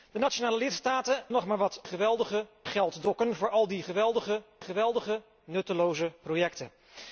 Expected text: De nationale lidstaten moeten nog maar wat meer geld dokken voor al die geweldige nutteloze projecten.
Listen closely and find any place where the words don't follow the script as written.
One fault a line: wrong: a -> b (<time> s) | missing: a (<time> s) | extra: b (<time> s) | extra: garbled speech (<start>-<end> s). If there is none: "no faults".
missing: moeten (1.2 s)
wrong: meer -> geweldige (1.8 s)
extra: geweldige (4.6 s)